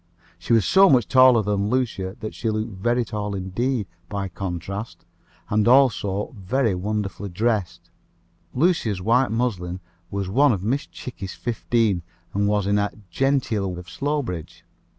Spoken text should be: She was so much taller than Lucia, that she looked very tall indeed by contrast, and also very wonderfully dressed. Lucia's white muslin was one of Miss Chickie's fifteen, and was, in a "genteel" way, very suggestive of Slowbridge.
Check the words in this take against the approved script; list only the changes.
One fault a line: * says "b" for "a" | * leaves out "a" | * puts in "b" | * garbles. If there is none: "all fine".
* leaves out "way very suggestive"